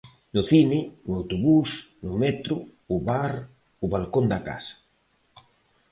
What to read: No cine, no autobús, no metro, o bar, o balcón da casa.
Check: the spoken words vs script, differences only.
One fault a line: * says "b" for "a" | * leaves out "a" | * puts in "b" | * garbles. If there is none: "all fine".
all fine